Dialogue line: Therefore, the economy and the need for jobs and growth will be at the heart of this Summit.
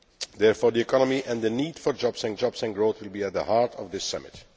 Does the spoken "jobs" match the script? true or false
true